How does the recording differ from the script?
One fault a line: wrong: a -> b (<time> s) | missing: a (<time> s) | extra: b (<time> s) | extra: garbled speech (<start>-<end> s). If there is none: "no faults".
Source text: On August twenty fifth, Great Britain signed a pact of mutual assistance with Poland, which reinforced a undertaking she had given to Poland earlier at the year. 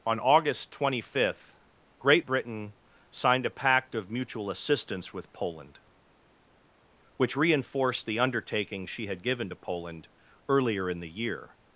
wrong: a -> the (8.1 s)
wrong: at -> in (10.9 s)